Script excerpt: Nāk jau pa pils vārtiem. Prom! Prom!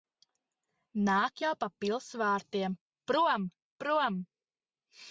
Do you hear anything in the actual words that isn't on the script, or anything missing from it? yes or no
no